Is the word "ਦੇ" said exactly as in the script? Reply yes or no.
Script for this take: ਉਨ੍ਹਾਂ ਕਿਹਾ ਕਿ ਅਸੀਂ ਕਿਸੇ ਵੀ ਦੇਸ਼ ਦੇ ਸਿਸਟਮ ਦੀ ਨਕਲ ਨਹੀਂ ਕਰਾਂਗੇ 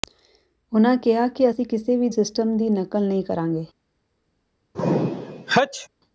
no